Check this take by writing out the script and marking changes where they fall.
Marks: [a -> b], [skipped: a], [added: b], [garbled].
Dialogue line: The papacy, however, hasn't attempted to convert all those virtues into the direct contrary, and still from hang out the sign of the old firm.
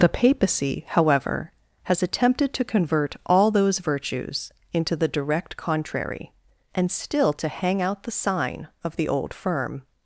The papacy, however, [hasn't -> has] attempted to convert all those virtues into the direct contrary, and still [from -> to] hang out the sign of the old firm.